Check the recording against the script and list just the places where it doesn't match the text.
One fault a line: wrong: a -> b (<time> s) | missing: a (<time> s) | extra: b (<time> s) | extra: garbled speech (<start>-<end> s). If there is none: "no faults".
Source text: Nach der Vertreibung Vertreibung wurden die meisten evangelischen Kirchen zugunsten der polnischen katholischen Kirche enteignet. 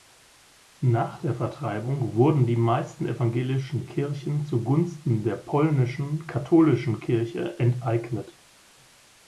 missing: Vertreibung (2.1 s)